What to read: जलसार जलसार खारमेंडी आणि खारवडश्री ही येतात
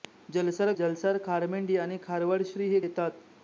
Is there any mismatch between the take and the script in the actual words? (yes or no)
no